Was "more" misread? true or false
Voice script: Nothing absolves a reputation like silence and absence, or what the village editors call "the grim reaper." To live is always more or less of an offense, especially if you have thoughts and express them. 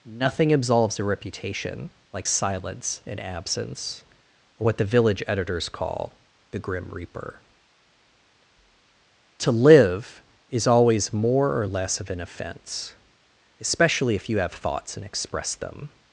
false